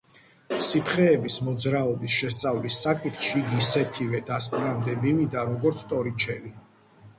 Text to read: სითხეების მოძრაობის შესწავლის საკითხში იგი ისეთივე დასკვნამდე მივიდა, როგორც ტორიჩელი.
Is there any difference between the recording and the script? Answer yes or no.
no